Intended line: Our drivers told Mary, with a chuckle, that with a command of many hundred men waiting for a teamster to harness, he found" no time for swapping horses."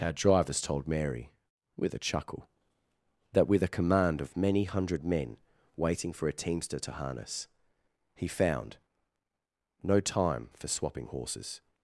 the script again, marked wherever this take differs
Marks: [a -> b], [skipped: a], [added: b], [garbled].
Our drivers told Mary, with a chuckle, that with a command of many hundred men waiting for a teamster to harness, he found" no time for swapping horses."